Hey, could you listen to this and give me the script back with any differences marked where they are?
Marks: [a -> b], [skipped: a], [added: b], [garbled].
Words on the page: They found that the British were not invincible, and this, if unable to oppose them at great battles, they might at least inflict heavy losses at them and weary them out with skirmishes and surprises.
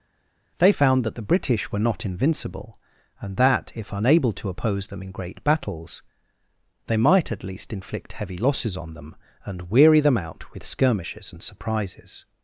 They found that the British were not invincible, and [this, -> that] if unable to oppose them [at -> in] great battles, they might at least inflict heavy losses [at -> on] them and weary them out with skirmishes and surprises.